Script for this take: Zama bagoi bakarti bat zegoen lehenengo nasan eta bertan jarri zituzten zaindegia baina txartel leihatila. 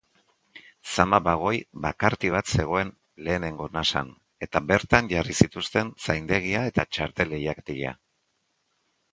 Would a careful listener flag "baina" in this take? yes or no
yes